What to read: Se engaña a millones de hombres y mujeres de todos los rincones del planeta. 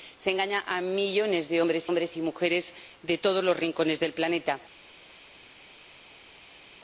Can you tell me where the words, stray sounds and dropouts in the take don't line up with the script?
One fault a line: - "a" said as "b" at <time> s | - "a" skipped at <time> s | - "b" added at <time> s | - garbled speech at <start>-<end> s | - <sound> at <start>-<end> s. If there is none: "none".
- "hombres" added at 1.9 s